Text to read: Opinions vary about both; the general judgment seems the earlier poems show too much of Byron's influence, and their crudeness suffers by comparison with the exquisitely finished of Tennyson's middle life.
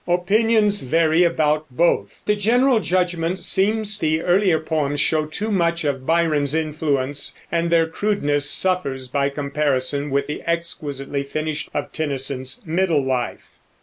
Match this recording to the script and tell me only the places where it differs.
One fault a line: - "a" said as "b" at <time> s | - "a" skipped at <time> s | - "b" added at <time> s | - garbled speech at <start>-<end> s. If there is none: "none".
none